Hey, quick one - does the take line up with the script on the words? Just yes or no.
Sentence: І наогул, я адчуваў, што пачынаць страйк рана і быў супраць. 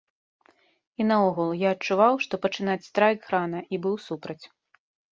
yes